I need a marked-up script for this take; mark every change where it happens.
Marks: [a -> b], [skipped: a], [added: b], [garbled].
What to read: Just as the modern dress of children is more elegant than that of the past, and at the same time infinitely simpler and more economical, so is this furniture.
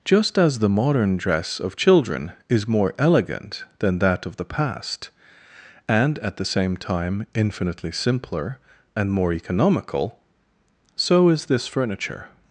Just as the modern dress of children is more elegant than that of the past, and at the same time infinitely simpler and more economical, so is this furniture.